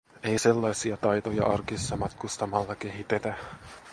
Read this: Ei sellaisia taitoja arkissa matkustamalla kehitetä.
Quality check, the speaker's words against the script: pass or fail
pass